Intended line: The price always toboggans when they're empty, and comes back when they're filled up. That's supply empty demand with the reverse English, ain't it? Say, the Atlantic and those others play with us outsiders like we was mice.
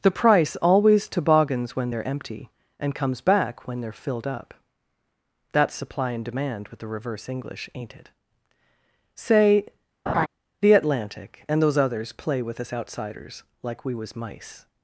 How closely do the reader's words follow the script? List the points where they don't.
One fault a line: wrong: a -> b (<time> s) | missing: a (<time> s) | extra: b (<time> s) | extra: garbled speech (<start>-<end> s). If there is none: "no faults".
wrong: empty -> and (6.1 s)